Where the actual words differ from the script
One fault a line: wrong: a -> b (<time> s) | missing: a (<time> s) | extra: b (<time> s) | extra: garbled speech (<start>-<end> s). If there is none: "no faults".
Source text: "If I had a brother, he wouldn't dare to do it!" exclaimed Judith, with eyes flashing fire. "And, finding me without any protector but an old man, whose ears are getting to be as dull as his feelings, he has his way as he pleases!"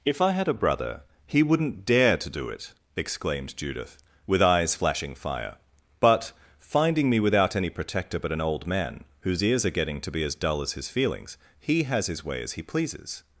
wrong: And -> But (6.0 s)